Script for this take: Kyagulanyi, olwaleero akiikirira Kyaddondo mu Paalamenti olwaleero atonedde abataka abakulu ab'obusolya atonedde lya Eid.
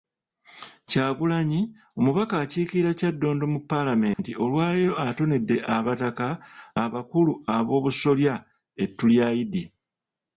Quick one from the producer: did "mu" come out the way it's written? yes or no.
yes